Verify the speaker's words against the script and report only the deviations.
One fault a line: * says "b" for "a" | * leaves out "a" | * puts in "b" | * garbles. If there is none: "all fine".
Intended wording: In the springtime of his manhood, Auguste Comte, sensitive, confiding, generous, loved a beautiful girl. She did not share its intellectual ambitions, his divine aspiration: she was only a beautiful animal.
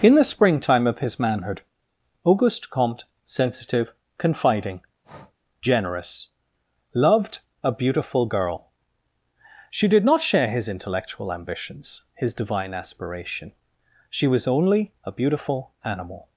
* says "his" for "its"